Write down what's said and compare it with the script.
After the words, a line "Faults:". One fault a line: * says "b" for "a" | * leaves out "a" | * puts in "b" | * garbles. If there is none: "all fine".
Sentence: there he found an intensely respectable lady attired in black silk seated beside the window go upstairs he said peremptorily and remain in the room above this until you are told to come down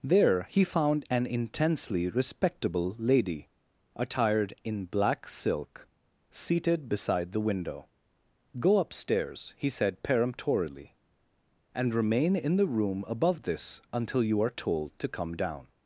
there he found an intensely respectable lady attired in black silk seated beside the window go upstairs he said peremptorily and remain in the room above this until you are told to come down
Faults:
all fine